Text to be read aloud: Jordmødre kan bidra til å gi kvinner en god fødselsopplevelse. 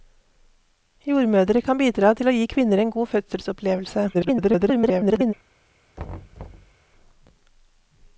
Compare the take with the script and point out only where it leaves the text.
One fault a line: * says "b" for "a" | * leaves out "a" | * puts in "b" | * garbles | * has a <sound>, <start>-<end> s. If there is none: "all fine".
* garbles
* has a thud, 6.0-6.7 s